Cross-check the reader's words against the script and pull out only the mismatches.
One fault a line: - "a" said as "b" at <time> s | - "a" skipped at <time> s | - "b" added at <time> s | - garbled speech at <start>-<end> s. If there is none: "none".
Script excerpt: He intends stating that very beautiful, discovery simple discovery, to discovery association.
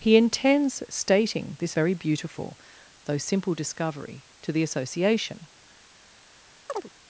- "that" said as "this" at 1.6 s
- "discovery" said as "though" at 3.0 s
- "discovery" said as "the" at 4.5 s